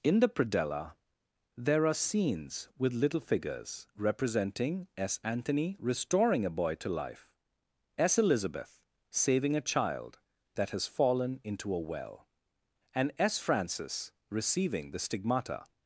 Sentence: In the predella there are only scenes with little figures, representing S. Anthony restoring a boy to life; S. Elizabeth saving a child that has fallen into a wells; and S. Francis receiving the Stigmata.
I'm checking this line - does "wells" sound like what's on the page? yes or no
no